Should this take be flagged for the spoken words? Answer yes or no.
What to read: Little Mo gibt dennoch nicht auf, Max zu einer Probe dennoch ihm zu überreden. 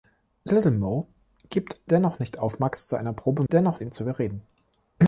no